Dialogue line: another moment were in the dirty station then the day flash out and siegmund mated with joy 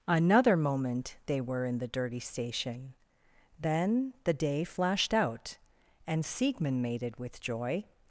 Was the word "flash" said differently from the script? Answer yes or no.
yes